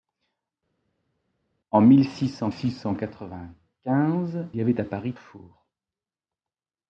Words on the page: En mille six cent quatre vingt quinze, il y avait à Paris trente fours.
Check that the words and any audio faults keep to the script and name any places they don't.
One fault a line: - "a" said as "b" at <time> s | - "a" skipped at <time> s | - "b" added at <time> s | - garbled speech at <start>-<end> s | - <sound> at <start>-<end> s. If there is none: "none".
- "six cent" added at 2.5 s
- "il" skipped at 4.5 s
- "trente" skipped at 5.1 s